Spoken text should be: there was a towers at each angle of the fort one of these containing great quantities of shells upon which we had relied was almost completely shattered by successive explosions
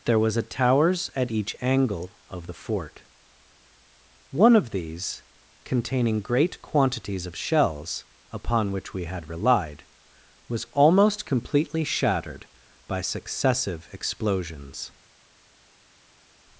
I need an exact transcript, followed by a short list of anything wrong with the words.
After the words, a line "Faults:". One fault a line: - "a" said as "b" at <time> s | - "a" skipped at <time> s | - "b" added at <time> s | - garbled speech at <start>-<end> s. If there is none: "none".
there was a towers at each angle of the fort one of these containing great quantities of shells upon which we had relied was almost completely shattered by successive explosions
Faults:
none